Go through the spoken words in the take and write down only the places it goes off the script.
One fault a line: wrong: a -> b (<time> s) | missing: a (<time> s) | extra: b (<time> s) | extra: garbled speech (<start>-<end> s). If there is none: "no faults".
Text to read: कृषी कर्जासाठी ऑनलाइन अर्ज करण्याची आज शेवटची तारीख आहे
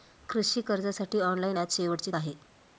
missing: अर्ज करण्याची (1.6 s)
missing: तारीख (2.1 s)